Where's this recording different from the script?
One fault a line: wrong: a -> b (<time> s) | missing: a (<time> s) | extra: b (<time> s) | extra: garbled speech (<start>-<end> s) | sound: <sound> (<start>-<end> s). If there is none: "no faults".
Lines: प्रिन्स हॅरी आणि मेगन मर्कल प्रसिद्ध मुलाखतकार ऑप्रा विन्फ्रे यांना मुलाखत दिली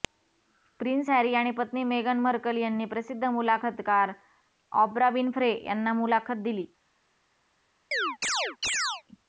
extra: पत्नी (1.5 s)
extra: यांनी (2.6 s)
sound: chirp (7.9-9.0 s)